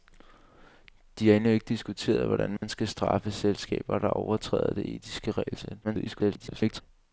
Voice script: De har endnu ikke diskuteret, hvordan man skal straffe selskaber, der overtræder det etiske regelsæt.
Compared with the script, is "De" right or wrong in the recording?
right